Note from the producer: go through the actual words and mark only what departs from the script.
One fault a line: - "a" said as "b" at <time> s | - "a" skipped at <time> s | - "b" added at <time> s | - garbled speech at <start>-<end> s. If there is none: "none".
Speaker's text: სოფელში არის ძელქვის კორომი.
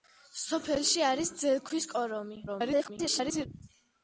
- garbled speech at 2.5-3.5 s